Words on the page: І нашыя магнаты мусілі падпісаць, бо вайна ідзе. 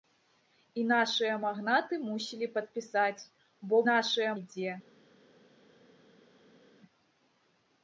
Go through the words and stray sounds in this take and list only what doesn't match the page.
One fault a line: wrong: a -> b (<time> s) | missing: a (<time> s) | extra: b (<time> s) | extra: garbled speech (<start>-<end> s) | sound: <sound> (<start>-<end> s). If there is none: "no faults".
wrong: вайна -> нашыя (3.9 s)